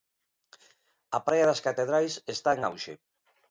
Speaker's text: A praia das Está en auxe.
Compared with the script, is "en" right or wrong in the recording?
right